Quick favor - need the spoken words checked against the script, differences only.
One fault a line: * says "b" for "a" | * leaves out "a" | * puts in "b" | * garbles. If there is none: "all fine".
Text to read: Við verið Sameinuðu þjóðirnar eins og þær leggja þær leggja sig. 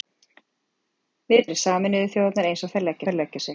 all fine